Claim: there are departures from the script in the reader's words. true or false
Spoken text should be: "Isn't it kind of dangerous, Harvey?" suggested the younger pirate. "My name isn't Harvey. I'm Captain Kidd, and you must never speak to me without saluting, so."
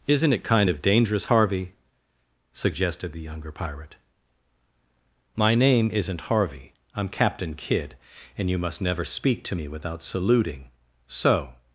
false